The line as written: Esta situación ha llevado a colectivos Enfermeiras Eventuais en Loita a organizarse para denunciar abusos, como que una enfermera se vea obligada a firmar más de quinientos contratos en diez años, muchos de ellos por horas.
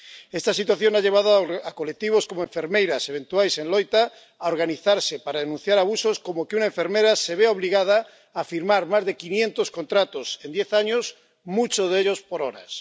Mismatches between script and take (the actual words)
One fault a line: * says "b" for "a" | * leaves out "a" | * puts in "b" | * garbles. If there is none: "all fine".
* puts in "como"